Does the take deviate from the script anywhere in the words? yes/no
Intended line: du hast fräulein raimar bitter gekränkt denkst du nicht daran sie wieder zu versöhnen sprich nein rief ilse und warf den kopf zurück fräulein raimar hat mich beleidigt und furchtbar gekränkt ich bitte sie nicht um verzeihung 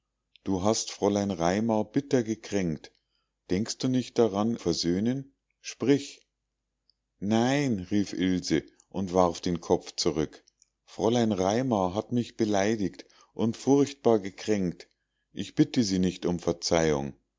yes